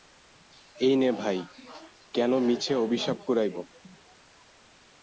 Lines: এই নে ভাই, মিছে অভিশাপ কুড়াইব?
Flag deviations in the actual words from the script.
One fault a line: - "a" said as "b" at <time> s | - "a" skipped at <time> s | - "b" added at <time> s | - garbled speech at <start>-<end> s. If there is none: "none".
- "কেন" added at 2.1 s